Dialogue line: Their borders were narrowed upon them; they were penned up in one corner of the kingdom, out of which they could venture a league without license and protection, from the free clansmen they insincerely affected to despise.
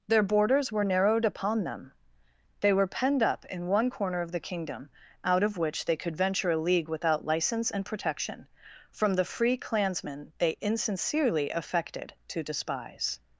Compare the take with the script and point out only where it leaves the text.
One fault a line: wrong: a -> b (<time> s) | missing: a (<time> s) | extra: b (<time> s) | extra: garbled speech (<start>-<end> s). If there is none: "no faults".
no faults